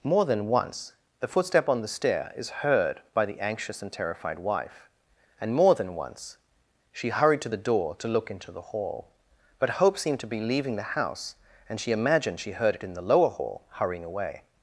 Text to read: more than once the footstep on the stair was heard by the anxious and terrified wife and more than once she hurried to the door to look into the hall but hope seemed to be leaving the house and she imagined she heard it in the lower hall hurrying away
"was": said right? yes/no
no